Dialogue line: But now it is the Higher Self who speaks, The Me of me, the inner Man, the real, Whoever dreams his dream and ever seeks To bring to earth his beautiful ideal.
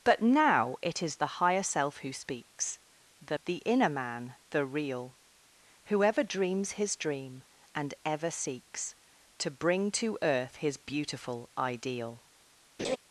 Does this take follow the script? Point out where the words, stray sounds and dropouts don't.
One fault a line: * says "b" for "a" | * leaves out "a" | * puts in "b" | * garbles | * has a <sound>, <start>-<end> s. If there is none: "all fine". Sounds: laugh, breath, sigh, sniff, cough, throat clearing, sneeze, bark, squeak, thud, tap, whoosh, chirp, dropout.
* leaves out "Me of me"
* has a laugh, 12.8-13.0 s